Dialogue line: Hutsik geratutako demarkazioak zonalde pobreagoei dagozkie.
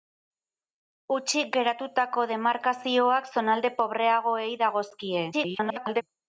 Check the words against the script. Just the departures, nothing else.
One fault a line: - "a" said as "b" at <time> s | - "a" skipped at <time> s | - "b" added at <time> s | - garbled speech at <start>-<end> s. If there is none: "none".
- garbled speech at 5.3-6.0 s